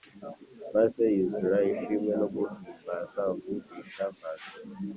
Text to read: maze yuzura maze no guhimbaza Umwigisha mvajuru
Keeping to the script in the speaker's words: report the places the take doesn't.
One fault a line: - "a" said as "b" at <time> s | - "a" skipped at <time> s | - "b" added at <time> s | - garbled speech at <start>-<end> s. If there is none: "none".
- "maze" said as "ishimwe" at 1.7 s